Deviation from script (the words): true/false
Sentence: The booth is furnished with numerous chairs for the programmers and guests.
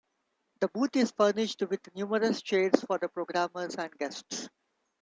false